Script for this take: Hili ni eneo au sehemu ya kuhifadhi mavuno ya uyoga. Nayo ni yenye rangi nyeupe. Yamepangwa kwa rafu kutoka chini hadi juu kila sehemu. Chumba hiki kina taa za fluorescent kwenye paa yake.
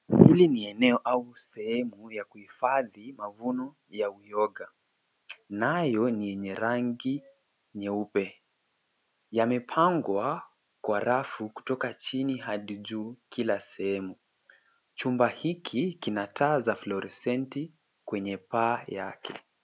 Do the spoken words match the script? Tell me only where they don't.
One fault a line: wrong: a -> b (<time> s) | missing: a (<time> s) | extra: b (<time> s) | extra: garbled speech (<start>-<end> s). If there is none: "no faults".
no faults